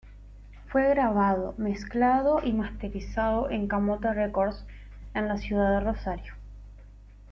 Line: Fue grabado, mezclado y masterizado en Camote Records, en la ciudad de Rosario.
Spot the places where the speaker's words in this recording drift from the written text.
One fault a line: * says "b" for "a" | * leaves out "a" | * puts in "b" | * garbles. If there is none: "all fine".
all fine